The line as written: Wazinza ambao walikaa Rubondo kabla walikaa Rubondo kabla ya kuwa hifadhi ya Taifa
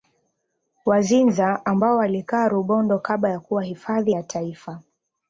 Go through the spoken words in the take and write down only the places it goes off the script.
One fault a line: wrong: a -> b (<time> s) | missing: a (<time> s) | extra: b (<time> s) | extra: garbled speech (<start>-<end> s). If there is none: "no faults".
missing: walikaa Rubondo kabla (3.3 s)